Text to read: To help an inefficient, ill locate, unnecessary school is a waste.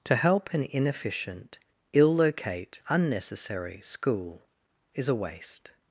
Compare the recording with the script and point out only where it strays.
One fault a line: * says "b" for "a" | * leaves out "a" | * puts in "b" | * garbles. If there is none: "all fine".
all fine